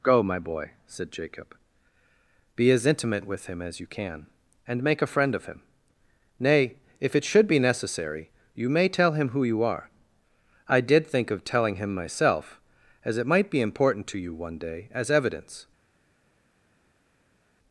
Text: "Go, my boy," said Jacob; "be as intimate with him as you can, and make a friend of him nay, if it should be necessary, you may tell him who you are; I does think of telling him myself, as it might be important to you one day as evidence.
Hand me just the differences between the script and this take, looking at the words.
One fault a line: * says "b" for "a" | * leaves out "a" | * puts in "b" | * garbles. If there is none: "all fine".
* says "did" for "does"